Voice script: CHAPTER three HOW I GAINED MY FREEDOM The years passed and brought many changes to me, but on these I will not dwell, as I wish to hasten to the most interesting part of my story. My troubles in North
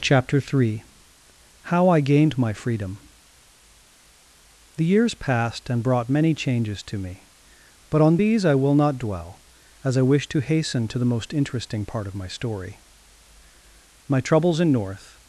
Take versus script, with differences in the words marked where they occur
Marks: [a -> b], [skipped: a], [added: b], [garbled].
CHAPTER three HOW I GAINED MY FREEDOM The years passed and brought many changes to me, but on these I will not dwell, as I wish to hasten to the most interesting part of my story. My troubles in North